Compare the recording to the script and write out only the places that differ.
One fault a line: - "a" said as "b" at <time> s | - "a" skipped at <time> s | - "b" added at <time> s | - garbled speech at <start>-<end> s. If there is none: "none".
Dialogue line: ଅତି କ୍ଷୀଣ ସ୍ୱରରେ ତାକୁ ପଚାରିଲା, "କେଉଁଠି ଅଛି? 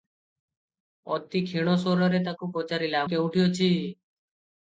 none